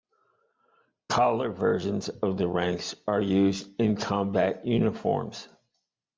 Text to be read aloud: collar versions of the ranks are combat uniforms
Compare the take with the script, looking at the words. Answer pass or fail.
fail